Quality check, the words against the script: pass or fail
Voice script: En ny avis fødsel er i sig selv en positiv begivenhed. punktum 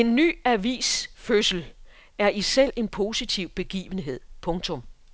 fail